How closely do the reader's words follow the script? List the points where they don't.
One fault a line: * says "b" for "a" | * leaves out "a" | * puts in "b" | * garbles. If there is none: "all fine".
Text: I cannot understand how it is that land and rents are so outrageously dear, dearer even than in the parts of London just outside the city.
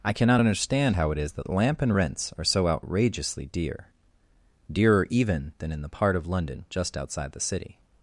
* says "lamp" for "land"
* says "part" for "parts"